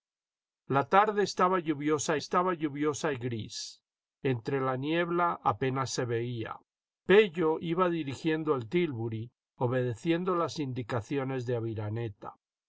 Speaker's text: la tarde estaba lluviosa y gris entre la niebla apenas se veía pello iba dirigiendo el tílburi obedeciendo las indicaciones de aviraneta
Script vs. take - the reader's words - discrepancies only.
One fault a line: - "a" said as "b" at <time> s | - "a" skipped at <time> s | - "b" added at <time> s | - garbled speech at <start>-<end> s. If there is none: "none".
- "estaba lluviosa" added at 2.1 s